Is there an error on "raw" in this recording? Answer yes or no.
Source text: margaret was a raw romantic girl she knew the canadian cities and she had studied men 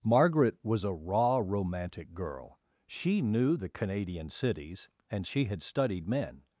no